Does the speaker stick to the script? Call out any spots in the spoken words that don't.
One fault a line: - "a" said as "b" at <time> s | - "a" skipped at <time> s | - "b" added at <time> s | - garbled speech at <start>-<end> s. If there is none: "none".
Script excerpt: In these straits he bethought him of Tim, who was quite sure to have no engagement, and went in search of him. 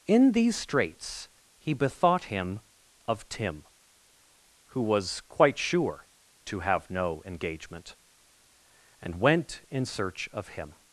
none